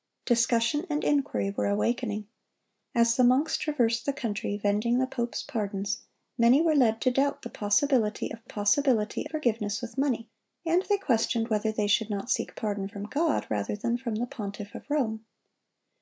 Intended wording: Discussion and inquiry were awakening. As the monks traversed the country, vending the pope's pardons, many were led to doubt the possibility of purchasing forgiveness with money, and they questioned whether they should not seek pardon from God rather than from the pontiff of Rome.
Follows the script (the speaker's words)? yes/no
no